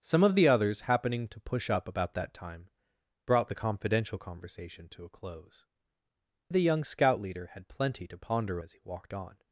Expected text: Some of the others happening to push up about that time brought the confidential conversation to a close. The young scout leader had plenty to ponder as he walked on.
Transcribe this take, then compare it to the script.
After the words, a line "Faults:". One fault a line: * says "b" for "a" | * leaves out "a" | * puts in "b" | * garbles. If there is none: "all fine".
Some of the others happening to push up about that time brought the confidential conversation to a close. The young scout leader had plenty to ponder as he walked on.
Faults:
all fine